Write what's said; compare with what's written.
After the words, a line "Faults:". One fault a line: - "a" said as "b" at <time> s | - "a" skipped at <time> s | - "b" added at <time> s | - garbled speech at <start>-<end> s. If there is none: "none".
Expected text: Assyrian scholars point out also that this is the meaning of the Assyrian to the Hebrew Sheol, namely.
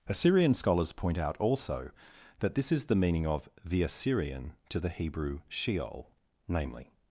Assyrian scholars point out also that this is the meaning of the Assyrian to the Hebrew Sheol, namely.
Faults:
none